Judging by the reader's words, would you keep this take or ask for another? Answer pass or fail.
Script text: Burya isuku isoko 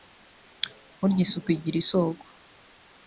fail